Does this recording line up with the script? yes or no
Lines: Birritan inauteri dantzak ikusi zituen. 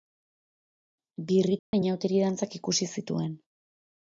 yes